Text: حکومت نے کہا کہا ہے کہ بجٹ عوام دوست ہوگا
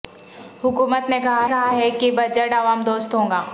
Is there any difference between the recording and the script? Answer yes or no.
no